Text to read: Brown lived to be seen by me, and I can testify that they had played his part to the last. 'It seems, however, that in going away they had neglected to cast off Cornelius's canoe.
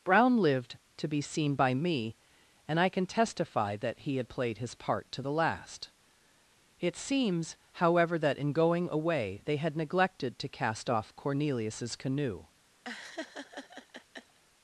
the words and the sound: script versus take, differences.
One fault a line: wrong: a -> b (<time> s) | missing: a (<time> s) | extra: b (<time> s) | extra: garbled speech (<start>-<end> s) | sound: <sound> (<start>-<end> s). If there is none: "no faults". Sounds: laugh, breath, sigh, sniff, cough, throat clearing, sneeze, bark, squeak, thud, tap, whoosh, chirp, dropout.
wrong: they -> he (4.0 s)
sound: laugh (12.8-14.4 s)